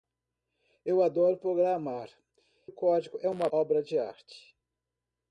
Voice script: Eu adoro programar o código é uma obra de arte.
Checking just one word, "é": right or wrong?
right